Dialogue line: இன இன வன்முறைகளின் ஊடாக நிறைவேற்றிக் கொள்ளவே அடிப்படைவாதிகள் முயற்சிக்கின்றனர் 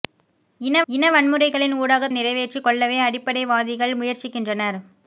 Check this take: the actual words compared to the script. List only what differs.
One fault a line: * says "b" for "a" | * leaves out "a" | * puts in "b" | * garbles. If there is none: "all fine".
all fine